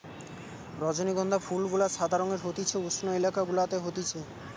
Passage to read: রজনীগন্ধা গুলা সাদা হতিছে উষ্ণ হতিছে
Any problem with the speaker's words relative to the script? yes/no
yes